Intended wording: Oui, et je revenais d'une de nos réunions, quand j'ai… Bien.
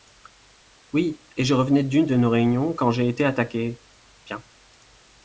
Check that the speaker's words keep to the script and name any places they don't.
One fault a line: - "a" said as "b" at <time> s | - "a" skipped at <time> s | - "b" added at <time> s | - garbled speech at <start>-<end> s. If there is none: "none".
- "été attaqué" added at 3.1 s